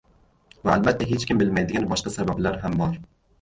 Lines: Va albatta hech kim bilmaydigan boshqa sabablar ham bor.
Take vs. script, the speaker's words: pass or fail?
pass